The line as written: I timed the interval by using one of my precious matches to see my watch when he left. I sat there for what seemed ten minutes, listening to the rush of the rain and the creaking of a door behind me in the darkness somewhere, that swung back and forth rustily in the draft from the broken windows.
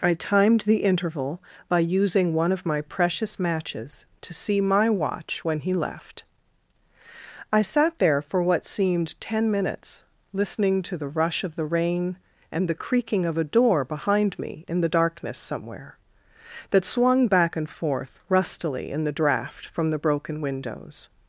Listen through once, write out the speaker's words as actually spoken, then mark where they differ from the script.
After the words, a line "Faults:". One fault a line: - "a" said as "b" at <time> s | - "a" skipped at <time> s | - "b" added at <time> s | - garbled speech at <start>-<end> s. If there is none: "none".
I timed the interval by using one of my precious matches to see my watch when he left. I sat there for what seemed ten minutes, listening to the rush of the rain and the creaking of a door behind me in the darkness somewhere, that swung back and forth rustily in the draft from the broken windows.
Faults:
none